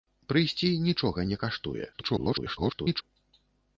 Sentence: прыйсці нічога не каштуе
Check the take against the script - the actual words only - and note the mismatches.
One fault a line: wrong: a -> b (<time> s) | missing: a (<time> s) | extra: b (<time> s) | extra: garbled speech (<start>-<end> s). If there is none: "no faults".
extra: garbled speech (1.9-3.0 s)